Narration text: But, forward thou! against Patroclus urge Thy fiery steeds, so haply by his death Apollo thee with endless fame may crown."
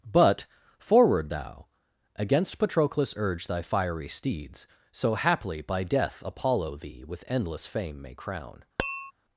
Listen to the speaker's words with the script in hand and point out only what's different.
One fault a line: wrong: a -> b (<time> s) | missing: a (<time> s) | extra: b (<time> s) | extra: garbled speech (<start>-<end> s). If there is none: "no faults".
missing: his (5.8 s)